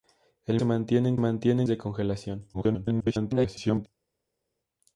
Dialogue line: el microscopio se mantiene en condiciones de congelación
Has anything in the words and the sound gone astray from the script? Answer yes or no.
yes